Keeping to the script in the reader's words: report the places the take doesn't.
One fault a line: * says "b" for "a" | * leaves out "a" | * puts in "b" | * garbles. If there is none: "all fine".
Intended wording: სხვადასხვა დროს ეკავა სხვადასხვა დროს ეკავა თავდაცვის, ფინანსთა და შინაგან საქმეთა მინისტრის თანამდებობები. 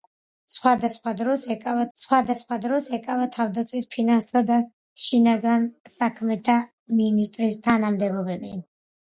all fine